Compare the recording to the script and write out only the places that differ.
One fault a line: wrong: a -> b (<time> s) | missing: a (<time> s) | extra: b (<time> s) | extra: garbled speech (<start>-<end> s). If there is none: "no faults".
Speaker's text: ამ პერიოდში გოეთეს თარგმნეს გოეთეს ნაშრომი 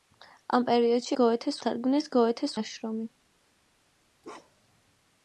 no faults